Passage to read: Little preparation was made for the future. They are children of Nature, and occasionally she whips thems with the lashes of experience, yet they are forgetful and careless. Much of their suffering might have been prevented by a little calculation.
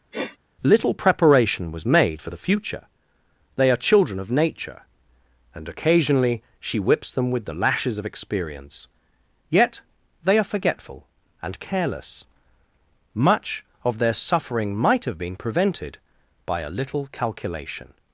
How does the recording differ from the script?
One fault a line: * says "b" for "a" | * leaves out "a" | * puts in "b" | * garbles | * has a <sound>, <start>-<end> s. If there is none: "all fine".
* has a sniff, 0.1-0.4 s
* says "them" for "thems"